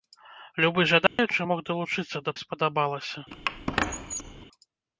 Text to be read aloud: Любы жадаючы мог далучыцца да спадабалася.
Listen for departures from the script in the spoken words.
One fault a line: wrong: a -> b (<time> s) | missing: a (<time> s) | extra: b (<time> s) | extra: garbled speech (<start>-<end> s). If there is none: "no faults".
no faults